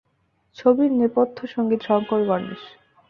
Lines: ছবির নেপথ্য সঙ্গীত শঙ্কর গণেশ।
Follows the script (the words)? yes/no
yes